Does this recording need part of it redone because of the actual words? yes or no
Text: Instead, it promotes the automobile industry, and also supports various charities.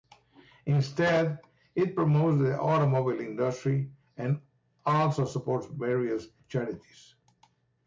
no